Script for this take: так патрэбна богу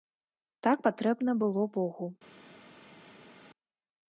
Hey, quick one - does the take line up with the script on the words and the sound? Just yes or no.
no